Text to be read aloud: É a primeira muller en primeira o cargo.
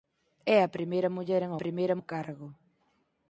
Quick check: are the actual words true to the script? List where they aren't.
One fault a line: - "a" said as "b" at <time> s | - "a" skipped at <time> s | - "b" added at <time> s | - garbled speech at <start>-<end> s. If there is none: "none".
none